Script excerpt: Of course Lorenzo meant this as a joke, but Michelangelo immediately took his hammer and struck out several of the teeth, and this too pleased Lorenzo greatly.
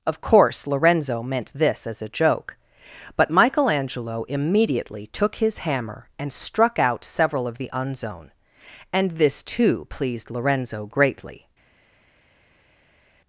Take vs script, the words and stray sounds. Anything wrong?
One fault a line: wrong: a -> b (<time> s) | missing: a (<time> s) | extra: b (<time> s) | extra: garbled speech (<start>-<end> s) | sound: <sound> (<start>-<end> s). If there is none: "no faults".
wrong: teeth -> unzone (7.7 s)